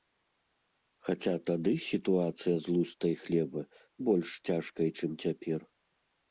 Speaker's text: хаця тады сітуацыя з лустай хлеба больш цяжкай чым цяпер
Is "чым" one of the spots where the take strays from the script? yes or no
no